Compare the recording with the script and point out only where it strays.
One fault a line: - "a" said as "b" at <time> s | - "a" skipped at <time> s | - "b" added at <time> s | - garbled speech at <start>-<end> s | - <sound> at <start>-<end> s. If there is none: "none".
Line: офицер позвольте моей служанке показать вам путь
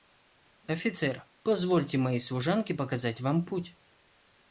none